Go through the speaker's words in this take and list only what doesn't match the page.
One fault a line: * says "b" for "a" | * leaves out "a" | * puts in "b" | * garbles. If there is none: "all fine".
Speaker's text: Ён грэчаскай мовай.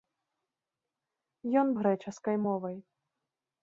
all fine